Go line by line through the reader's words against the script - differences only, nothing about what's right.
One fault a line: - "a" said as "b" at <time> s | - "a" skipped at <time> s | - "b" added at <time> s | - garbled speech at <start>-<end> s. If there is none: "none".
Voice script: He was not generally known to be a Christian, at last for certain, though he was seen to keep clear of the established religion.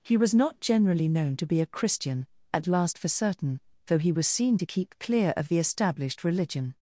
none